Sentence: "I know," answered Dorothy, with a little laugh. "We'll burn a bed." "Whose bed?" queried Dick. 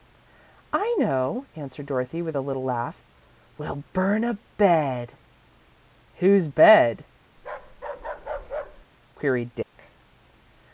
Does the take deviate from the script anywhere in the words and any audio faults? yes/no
yes